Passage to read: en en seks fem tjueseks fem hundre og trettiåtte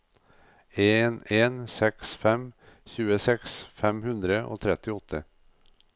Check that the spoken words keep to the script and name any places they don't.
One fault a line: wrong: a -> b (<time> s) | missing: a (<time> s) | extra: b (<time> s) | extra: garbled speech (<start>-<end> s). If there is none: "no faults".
no faults